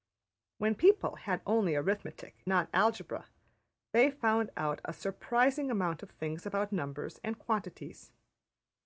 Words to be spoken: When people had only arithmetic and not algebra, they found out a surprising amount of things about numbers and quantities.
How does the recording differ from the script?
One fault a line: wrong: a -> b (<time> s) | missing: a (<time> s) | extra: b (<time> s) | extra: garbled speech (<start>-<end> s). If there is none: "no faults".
missing: and (2.5 s)